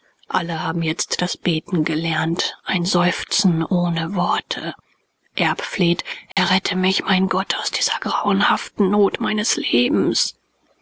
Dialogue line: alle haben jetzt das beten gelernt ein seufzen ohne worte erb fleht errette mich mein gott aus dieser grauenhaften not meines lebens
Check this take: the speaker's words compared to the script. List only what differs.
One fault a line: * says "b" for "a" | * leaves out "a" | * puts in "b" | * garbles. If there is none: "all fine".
all fine